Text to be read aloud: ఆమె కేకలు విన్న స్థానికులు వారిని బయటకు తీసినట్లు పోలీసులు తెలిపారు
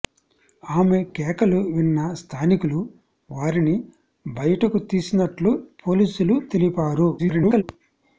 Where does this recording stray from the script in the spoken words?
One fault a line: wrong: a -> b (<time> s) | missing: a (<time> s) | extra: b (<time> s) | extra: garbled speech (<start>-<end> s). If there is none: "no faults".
extra: garbled speech (7.2-7.6 s)